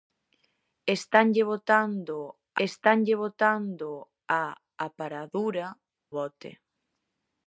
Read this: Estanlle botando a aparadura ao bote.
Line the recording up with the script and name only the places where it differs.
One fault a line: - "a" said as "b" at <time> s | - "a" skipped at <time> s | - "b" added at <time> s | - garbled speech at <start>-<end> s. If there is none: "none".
- "estanlle botando" added at 2.7 s
- "ao" skipped at 5.7 s